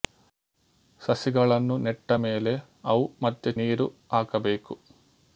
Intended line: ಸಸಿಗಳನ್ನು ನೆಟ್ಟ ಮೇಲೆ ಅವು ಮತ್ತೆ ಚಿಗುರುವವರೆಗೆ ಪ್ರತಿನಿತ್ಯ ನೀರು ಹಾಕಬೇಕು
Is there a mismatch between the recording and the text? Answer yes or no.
yes